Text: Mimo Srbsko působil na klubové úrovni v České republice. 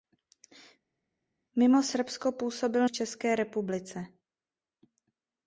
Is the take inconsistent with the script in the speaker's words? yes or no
yes